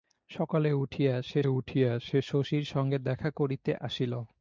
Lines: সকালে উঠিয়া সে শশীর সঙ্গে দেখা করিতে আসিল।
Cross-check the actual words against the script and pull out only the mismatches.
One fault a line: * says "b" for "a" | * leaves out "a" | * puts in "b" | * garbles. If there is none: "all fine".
* puts in "উঠিয়া সে"